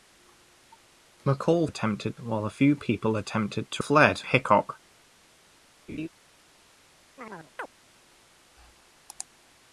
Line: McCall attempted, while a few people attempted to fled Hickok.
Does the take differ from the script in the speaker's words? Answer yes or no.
no